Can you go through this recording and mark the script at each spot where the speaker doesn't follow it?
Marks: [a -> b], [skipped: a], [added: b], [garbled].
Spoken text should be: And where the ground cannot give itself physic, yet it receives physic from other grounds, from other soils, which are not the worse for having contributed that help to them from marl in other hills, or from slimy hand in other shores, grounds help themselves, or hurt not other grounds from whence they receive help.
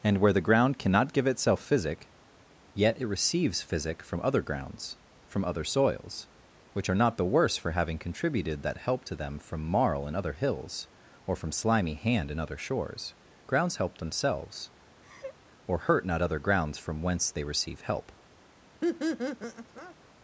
And where the ground cannot give itself physic, yet it receives physic from other grounds, from other soils, which are not the worse for having contributed that help to them from marl in other hills, or from slimy hand in other shores, grounds help themselves, or hurt not other grounds from whence they receive help.